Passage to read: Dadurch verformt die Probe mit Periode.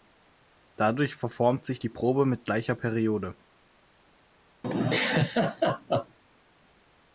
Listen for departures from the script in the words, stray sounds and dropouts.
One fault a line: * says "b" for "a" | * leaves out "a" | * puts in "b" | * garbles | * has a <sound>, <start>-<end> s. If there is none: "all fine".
* puts in "sich"
* puts in "gleicher"
* has a laugh, 4.6-6.2 s